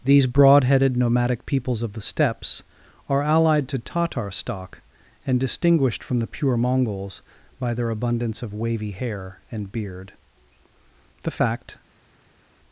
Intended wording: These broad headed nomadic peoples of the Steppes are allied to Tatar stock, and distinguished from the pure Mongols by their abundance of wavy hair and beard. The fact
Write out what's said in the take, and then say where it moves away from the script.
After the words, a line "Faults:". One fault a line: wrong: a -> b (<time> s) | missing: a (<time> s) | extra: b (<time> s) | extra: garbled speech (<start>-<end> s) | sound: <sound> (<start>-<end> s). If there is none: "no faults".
These broad headed nomadic peoples of the Steppes are allied to Tatar stock, and distinguished from the pure Mongols by their abundance of wavy hair and beard. The fact
Faults:
no faults